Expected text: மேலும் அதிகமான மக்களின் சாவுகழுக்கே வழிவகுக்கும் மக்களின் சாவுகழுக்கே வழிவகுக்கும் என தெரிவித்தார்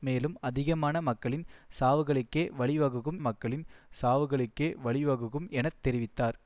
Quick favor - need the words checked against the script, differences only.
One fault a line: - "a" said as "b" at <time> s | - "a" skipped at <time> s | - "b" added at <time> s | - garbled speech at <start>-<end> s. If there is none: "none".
none